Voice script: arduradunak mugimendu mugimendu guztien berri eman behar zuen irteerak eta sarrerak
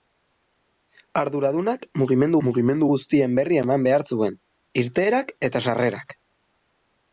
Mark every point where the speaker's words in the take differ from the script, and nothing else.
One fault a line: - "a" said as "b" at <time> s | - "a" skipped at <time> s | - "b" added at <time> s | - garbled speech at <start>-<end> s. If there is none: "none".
none